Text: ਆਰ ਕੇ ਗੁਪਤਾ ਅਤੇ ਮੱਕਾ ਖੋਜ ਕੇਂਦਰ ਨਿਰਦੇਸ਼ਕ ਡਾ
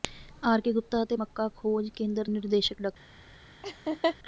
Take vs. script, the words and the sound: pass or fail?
fail